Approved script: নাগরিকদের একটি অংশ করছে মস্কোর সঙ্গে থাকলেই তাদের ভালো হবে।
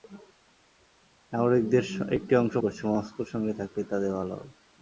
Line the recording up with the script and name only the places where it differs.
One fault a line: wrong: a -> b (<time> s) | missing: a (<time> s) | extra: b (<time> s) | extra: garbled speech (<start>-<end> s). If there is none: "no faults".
no faults